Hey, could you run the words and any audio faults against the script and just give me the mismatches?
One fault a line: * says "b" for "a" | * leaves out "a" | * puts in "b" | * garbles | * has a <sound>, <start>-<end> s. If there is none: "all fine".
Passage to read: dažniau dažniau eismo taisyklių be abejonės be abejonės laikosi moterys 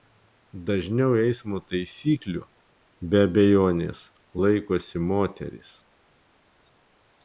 * leaves out "dažniau"
* leaves out "be abejonės"